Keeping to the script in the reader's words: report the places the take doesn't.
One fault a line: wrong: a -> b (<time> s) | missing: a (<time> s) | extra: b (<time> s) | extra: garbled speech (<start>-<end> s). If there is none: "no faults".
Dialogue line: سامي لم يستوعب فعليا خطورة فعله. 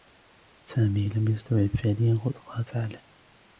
no faults